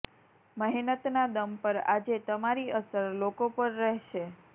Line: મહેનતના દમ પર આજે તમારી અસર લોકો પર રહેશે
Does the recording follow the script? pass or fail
pass